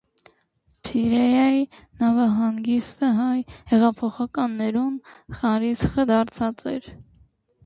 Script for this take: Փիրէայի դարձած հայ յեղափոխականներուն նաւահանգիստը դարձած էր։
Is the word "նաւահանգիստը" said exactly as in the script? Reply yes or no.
no